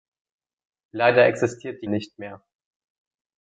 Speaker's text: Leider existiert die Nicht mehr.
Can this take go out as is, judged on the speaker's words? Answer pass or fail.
pass